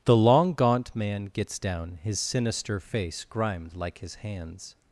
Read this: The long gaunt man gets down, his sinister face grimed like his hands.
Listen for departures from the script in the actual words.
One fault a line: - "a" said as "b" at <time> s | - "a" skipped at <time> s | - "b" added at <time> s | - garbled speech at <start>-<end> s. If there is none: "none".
none